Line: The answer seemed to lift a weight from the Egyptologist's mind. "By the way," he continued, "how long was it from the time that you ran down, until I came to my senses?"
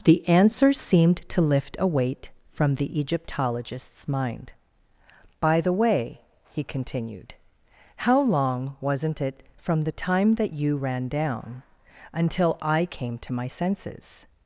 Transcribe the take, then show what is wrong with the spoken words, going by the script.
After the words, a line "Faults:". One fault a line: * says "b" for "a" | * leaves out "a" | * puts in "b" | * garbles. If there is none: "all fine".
The answer seemed to lift a weight from the Egyptologist's mind. "By the way," he continued, "how long wasn't it from the time that you ran down, until I came to my senses?"
Faults:
* says "wasn't" for "was"